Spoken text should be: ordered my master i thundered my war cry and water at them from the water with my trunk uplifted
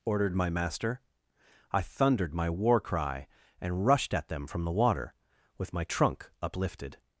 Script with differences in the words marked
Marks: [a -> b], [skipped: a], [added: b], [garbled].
ordered my master i thundered my war cry and [water -> rushed] at them from the water with my trunk uplifted